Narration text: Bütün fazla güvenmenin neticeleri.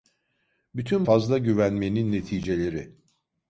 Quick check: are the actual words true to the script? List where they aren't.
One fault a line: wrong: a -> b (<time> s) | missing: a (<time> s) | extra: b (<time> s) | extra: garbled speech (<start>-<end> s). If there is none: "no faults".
no faults